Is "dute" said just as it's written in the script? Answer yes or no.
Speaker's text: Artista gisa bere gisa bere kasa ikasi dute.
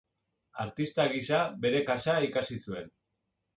no